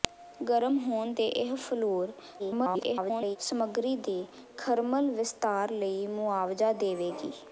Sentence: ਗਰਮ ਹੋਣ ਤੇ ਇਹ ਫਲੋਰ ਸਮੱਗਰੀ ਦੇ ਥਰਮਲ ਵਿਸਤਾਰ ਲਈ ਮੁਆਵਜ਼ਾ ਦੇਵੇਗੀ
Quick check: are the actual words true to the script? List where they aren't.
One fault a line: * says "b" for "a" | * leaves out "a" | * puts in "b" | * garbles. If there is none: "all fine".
* garbles